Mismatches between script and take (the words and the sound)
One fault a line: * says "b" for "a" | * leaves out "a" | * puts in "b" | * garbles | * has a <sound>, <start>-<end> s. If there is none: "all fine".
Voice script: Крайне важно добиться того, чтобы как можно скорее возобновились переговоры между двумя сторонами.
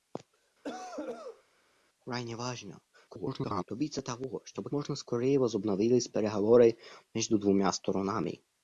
* has a cough, 0.6-1.4 s
* garbles
* leaves out "как"